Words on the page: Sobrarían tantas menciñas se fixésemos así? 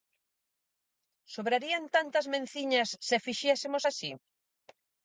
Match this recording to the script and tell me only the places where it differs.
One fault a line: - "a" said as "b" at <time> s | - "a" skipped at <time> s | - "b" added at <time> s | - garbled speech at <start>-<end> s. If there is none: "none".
none